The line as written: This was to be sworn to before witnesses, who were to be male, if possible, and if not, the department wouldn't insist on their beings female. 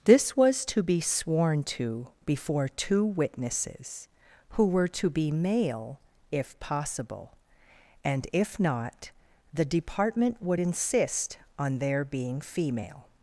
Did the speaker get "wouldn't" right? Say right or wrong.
wrong